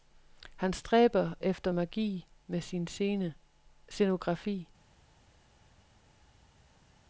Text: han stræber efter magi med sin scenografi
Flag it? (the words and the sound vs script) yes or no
no